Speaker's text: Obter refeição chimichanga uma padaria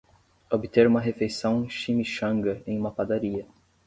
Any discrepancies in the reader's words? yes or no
yes